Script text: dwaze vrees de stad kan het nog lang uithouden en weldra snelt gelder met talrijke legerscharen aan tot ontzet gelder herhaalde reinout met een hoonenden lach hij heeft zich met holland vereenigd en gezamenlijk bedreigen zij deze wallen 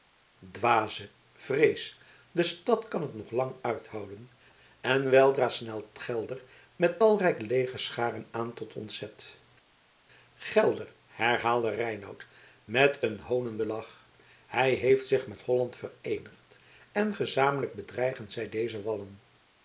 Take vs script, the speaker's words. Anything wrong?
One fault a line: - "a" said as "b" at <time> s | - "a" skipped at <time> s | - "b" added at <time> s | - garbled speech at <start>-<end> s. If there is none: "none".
none